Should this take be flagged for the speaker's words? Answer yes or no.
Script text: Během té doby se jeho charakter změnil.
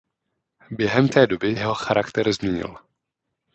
yes